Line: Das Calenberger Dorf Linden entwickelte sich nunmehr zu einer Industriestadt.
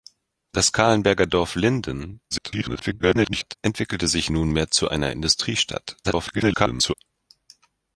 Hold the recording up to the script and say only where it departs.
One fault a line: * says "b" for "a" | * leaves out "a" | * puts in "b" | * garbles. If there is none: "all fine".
* garbles
* garbles